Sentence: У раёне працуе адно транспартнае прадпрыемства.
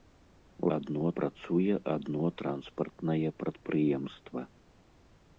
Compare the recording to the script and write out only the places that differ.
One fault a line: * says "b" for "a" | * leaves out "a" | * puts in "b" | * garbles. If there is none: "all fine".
* says "адно" for "раёне"